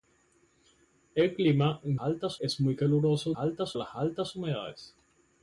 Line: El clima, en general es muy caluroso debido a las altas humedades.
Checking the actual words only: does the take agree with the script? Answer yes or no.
no